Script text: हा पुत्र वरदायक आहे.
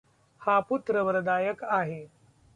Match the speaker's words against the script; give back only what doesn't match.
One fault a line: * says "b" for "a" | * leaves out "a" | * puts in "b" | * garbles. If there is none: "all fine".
all fine